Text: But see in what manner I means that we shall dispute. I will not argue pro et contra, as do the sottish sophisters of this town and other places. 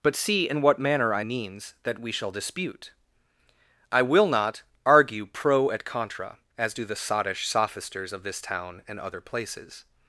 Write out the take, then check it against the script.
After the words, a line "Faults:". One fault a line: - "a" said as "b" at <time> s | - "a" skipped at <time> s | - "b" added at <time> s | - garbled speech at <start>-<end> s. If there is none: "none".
But see in what manner I means that we shall dispute. I will not argue pro et contra, as do the sottish sophisters of this town and other places.
Faults:
none